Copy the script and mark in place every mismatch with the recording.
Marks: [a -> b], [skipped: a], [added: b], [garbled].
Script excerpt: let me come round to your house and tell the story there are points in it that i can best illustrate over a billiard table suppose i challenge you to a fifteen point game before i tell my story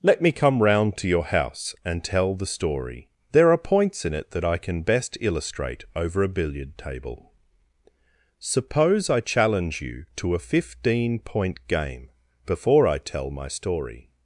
let me come round to your house and tell the story there are points in it that i can best illustrate over a billiard table suppose i challenge you to a fifteen point game before i tell my story